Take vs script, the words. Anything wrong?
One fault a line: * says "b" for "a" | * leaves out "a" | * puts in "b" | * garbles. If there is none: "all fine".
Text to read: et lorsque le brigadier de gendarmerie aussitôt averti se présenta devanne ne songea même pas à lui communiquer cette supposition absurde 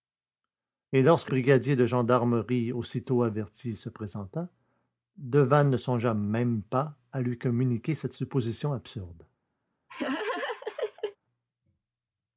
* leaves out "le"